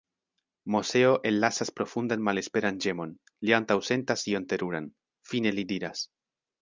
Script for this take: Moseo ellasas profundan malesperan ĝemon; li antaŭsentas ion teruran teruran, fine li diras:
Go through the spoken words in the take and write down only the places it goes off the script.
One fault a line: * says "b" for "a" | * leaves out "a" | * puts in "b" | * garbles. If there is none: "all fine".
* leaves out "teruran"